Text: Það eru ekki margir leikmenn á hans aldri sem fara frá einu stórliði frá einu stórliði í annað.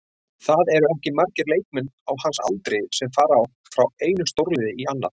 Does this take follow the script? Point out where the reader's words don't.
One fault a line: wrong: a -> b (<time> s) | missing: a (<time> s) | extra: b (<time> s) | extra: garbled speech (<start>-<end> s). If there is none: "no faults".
missing: frá einu stórliði (4.7 s)